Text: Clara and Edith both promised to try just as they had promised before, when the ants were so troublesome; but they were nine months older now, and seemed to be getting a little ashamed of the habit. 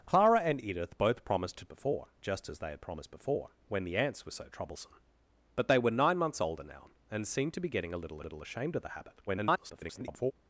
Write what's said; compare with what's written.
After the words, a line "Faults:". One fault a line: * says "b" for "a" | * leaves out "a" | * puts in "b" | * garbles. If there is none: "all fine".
Clara and Edith both promised to before just as they had promised before, when the ants were so troublesome; but they were nine months older now, and seemed to be getting a little little ashamed of the habit. [garbled]
Faults:
* says "before" for "try"
* puts in "little"
* garbles